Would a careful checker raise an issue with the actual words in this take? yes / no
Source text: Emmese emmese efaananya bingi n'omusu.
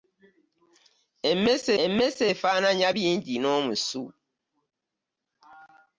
no